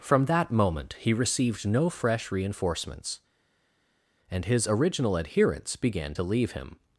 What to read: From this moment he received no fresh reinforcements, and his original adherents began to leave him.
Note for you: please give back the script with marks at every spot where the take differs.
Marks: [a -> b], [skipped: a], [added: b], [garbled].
From [this -> that] moment he received no fresh reinforcements, and his original adherents began to leave him.